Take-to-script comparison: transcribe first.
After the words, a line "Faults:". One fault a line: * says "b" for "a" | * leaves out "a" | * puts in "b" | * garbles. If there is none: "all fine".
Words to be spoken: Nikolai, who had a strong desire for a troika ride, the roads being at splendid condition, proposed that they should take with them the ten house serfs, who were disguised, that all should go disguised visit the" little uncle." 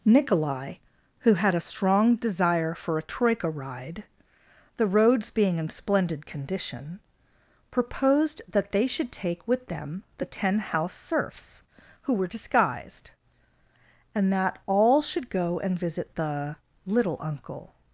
Nikolai, who had a strong desire for a troika ride, the roads being in splendid condition, proposed that they should take with them the ten house serfs, who were disguised, and that all should go and visit the" little uncle."
Faults:
* says "in" for "at"
* puts in "and"
* says "and" for "disguised"